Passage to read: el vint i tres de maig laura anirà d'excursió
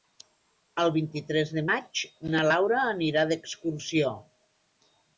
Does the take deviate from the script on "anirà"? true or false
false